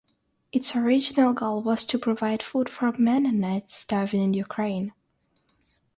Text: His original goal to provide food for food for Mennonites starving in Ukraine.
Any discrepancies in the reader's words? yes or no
yes